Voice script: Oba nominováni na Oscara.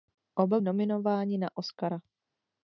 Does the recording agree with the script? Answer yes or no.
yes